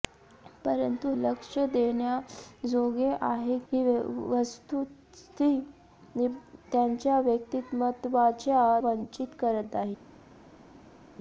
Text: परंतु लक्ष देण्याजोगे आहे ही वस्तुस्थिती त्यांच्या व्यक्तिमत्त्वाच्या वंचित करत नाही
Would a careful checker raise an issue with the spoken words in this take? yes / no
no